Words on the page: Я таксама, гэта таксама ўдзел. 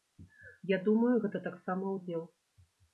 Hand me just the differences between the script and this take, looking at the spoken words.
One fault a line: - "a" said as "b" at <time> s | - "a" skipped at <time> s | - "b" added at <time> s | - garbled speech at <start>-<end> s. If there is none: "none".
- "таксама" said as "думаю" at 0.9 s